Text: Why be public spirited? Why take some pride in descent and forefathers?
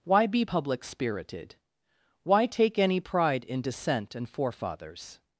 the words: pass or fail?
fail